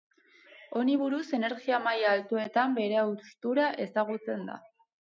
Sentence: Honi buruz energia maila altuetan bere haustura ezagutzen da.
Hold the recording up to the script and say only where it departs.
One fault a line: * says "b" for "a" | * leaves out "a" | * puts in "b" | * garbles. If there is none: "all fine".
all fine